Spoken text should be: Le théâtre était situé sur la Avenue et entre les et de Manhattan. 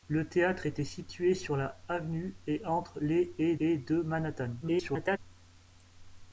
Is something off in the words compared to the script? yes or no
yes